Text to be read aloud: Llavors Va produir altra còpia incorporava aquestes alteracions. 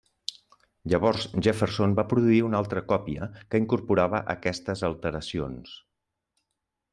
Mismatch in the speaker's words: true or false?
true